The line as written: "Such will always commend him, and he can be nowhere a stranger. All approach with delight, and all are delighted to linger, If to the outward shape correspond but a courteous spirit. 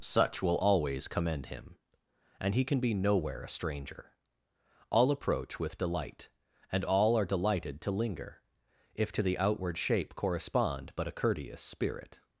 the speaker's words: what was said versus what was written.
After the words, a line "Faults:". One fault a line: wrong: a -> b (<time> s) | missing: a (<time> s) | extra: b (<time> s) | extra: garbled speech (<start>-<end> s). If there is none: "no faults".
"Such will always commend him, and he can be nowhere a stranger. All approach with delight, and all are delighted to linger, If to the outward shape correspond but a courteous spirit.
Faults:
no faults